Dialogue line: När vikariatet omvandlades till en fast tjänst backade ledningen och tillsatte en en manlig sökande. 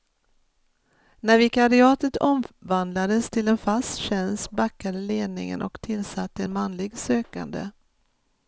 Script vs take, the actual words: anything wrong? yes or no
yes